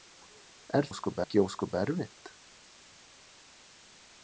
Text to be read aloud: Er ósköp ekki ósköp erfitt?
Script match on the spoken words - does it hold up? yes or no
yes